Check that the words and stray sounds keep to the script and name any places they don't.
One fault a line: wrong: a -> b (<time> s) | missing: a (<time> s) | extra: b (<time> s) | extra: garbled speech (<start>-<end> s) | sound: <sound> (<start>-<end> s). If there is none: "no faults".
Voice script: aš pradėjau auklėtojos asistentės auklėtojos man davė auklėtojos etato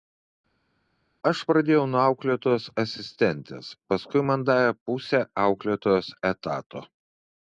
extra: nuo (1.9 s)
wrong: auklėtojos -> paskui (3.9 s)
extra: pusę (4.9 s)